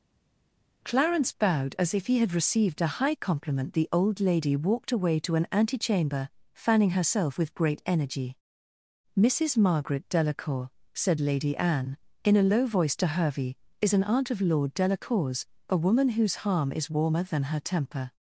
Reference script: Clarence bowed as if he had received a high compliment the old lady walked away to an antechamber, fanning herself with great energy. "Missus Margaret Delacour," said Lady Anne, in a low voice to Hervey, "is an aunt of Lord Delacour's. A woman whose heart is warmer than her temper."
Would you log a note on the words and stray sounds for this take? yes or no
yes